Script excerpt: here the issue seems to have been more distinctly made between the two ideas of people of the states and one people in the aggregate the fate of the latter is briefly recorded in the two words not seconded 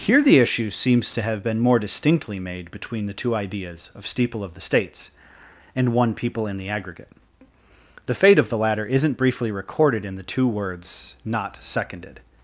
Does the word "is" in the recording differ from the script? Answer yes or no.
yes